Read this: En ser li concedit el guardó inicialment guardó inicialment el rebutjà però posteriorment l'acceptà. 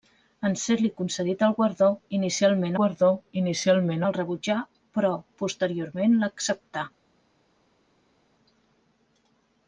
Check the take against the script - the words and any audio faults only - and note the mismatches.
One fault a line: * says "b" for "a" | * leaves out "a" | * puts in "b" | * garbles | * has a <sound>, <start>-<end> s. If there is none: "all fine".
all fine